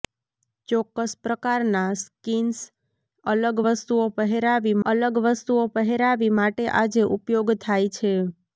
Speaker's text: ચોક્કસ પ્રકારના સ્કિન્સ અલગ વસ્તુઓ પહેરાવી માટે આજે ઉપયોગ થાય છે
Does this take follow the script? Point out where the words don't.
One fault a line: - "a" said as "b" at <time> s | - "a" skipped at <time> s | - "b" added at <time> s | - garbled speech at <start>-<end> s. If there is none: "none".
- "અલગ વસ્તુઓ પહેરાવી" added at 4.8 s